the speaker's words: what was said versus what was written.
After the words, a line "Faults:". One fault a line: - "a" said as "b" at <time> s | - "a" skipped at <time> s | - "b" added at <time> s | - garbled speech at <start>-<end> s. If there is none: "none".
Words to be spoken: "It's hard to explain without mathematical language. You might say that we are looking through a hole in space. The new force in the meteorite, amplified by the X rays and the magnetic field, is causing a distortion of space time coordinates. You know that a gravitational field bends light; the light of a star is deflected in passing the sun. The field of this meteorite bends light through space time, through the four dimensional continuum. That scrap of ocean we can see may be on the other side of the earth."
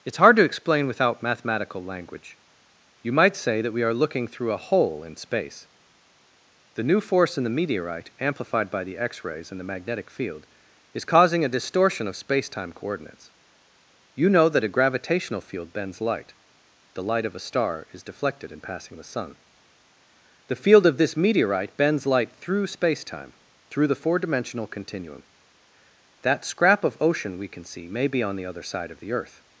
"It's hard to explain without mathematical language. You might say that we are looking through a hole in space. The new force in the meteorite, amplified by the X rays and the magnetic field, is causing a distortion of space time coordinates. You know that a gravitational field bends light; the light of a star is deflected in passing the sun. The field of this meteorite bends light through space time, through the four dimensional continuum. That scrap of ocean we can see may be on the other side of the earth."
Faults:
none